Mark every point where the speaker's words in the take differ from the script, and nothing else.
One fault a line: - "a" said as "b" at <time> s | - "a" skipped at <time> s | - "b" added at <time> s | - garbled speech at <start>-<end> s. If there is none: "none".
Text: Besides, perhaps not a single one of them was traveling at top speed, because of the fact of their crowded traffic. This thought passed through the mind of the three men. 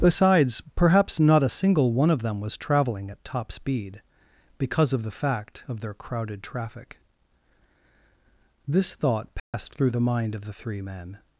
none